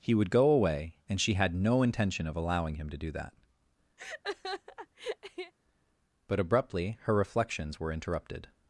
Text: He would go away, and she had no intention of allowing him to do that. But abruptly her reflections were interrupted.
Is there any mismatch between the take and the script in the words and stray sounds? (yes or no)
yes